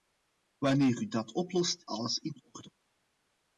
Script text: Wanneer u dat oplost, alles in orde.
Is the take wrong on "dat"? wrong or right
right